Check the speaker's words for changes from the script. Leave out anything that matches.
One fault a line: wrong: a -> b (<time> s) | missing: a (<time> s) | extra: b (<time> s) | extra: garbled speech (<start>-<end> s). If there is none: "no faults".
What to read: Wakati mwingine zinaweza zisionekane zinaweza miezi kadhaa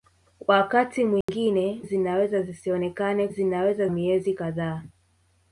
no faults